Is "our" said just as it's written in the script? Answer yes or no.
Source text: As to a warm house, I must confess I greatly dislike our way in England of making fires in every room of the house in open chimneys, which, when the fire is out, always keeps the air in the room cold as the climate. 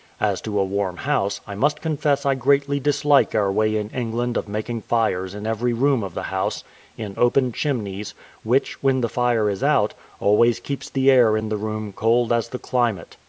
yes